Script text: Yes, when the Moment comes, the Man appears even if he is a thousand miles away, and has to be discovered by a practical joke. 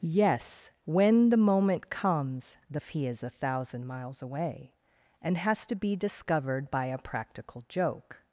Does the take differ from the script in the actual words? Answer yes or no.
yes